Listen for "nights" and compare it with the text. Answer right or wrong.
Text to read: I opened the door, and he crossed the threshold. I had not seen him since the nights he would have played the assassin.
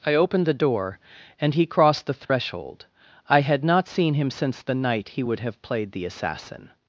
wrong